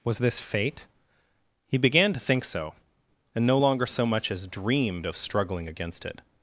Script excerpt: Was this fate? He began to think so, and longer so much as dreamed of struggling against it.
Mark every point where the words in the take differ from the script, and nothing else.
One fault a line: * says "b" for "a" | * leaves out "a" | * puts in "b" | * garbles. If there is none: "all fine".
* puts in "no"